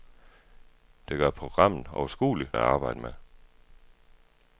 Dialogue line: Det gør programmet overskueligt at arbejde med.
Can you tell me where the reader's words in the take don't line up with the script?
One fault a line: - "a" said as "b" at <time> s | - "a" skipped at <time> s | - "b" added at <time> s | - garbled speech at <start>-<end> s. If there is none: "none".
none